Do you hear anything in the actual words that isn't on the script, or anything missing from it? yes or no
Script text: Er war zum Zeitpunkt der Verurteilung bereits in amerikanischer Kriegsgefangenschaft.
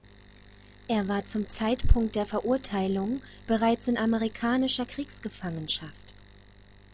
no